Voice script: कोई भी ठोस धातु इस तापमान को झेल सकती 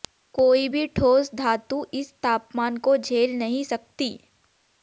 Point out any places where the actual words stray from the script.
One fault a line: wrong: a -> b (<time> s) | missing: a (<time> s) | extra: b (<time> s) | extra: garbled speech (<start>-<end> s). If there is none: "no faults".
extra: नहीं (3.4 s)